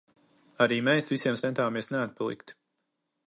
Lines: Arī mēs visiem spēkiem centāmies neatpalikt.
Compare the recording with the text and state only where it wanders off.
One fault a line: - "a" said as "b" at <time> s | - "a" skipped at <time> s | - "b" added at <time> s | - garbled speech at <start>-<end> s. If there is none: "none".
- "spēkiem" skipped at 1.4 s